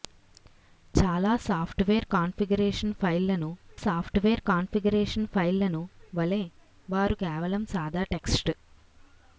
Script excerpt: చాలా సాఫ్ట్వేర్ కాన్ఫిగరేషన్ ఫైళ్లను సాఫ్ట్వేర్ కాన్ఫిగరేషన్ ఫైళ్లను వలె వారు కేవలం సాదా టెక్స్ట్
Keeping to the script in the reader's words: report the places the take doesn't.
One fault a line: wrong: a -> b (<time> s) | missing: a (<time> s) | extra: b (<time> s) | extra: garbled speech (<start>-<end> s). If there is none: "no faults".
no faults